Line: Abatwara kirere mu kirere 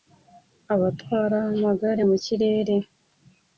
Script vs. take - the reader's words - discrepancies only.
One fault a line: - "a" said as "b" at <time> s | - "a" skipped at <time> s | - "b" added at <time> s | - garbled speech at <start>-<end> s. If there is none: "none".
- "kirere" said as "amagare" at 1.5 s